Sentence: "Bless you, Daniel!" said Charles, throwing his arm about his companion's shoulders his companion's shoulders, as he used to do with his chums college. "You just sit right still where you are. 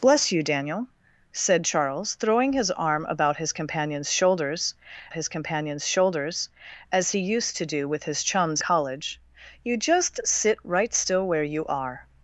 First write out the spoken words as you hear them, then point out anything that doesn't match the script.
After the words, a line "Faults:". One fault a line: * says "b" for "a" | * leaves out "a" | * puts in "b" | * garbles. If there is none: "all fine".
"Bless you, Daniel!" said Charles, throwing his arm about his companion's shoulders his companion's shoulders, as he used to do with his chums college. "You just sit right still where you are.
Faults:
all fine